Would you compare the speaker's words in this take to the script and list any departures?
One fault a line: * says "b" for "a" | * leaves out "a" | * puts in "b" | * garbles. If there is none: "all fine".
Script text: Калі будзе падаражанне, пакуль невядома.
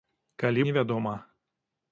* leaves out "будзе падаражанне пакуль"